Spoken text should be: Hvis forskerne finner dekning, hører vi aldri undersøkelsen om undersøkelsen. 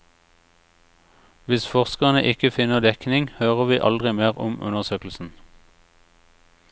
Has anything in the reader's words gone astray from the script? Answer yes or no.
yes